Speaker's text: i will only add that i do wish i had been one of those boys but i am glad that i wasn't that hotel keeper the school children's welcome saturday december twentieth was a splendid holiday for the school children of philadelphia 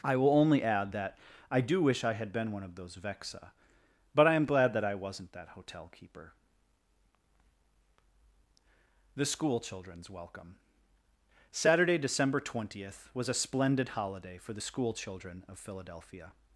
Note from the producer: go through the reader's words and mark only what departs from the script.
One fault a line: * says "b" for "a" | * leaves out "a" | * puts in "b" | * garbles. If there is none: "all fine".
* says "vexa" for "boys"